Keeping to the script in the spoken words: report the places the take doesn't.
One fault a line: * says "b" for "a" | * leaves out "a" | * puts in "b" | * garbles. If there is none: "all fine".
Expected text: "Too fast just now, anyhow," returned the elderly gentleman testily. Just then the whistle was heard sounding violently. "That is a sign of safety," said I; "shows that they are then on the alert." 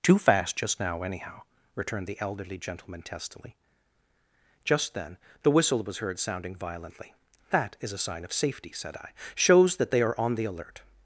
* leaves out "then"